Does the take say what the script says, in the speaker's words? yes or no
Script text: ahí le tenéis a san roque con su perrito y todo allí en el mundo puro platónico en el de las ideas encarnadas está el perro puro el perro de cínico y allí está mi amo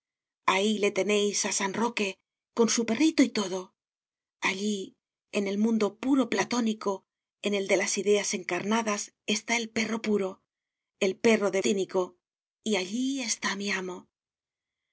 yes